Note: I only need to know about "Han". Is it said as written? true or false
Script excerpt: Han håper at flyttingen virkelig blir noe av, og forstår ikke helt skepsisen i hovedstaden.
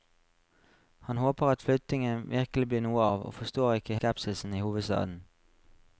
true